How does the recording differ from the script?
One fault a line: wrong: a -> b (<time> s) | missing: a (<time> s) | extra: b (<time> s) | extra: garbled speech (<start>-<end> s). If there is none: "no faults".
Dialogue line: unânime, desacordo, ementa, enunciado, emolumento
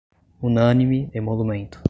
missing: desacordo ementa enunciado (1.1 s)